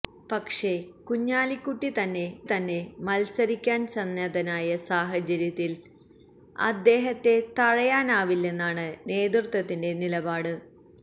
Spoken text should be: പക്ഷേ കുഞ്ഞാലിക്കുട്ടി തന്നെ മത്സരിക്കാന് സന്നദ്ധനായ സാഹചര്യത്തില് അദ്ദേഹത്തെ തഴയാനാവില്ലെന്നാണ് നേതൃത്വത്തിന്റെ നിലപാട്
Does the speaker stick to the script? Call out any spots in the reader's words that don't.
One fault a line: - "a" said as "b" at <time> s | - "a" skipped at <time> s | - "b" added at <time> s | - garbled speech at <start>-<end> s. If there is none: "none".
- "തന്നെ" added at 2.4 s